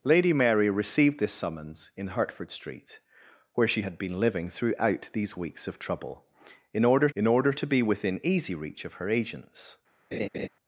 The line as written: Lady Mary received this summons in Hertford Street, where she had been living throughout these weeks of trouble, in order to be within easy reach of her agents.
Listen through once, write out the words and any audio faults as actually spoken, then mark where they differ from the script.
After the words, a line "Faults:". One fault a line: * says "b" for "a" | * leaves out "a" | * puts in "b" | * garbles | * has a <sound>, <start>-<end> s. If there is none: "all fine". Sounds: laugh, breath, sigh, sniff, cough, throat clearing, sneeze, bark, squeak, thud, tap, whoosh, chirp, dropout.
Lady Mary received this summons in Hertford Street, where she had been living throughout these weeks of trouble, in order in order to be within easy reach of her agents.
Faults:
* puts in "in order"
* has a laugh, 10.1-10.5 s